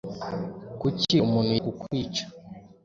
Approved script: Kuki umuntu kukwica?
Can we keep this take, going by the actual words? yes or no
yes